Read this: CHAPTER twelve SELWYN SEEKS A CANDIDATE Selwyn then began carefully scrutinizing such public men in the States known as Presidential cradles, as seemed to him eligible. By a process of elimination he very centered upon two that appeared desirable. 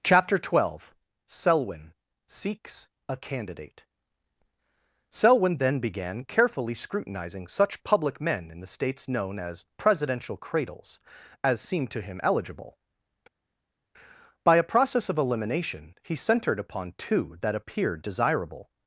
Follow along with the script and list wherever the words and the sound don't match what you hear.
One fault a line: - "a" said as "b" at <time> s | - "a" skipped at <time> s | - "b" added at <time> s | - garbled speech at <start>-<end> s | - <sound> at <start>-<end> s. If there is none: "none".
- "very" skipped at 16.2 s